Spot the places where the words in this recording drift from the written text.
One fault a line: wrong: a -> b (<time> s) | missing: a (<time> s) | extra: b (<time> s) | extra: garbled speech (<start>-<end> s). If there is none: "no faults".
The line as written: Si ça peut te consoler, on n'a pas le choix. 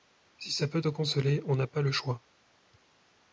no faults